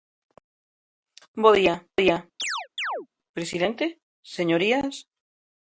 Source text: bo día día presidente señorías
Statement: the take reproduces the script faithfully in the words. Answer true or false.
true